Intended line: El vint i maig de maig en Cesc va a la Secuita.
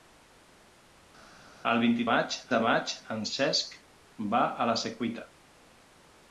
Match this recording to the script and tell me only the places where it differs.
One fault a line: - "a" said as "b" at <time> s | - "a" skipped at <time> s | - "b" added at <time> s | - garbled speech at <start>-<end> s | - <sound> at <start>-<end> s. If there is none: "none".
none